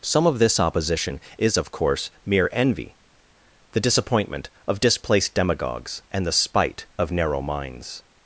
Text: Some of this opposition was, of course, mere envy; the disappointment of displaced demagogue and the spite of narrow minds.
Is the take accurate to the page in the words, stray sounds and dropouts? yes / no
no